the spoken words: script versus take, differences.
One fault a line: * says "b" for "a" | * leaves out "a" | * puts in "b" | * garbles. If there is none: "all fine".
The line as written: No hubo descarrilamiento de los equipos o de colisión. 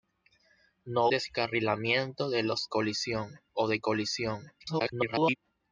* leaves out "hubo"
* says "colisión" for "equipos"
* garbles